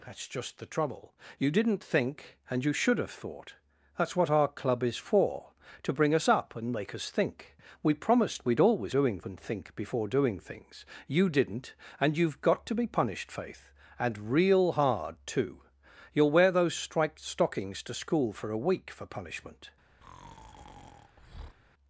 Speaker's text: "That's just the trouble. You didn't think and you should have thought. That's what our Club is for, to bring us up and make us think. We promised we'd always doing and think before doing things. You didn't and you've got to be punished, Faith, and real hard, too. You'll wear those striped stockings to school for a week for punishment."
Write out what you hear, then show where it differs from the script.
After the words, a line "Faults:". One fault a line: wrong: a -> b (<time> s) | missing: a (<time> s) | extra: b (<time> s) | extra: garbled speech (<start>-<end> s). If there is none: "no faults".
"That's just the trouble. You didn't think and you should have thought. That's what our Club is for, to bring us up and make us think. We promised we'd always doing and think before doing things. You didn't and you've got to be punished, Faith, and real hard, too. You'll wear those striped stockings to school for a week for punishment."
Faults:
no faults